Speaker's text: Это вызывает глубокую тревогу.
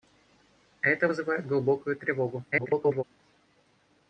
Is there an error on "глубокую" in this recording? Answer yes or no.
no